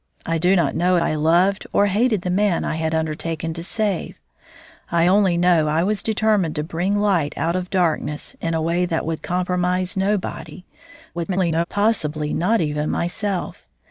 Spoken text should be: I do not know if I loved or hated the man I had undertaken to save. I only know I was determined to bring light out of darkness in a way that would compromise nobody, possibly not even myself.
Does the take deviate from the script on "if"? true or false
true